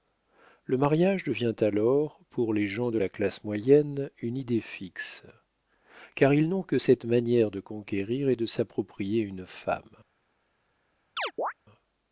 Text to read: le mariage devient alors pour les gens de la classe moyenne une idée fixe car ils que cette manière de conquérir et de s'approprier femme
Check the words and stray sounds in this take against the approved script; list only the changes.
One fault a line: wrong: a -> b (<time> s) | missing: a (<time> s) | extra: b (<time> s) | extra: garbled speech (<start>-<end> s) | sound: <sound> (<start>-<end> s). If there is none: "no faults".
extra: n'ont (6.5 s)
extra: une (9.2 s)
sound: chirp (11.2-11.5 s)